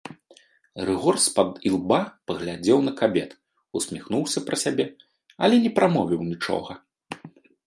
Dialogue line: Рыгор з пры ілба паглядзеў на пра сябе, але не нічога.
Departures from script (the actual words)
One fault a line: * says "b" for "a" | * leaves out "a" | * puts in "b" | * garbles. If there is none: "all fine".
* says "пад" for "пры"
* puts in "кабет усміхнуўся"
* puts in "прамовіў"